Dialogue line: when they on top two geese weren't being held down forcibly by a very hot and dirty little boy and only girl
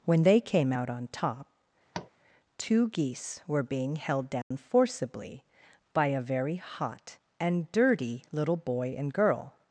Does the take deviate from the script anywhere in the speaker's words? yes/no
yes